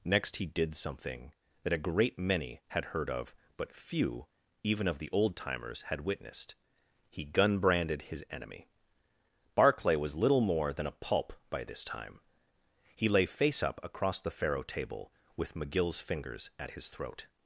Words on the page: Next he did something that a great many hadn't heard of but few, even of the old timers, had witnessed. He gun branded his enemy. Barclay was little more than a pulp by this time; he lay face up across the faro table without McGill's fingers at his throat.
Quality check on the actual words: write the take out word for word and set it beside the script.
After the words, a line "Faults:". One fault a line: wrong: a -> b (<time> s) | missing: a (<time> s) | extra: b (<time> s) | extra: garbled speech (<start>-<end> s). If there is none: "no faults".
Next he did something that a great many had heard of but few, even of the old timers, had witnessed. He gun branded his enemy. Barclay was little more than a pulp by this time; he lay face up across the faro table with McGill's fingers at his throat.
Faults:
wrong: hadn't -> had (2.7 s)
wrong: without -> with (15.4 s)